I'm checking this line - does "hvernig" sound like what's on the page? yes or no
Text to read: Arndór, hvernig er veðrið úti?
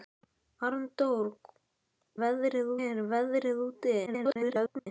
no